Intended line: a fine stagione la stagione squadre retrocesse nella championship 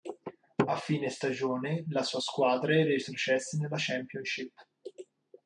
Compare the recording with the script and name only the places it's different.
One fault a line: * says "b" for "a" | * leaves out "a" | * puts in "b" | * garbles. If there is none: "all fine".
* says "sua" for "stagione"